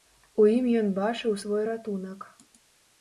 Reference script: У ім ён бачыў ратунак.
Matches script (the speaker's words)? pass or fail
fail